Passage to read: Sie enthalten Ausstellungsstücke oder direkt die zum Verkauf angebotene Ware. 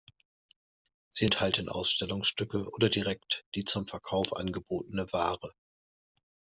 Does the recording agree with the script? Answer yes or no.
yes